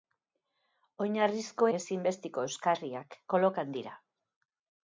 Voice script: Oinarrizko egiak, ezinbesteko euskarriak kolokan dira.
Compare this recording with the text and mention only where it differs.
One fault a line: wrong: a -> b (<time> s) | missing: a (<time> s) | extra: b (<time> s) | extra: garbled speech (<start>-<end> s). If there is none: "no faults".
missing: egiak (1.7 s)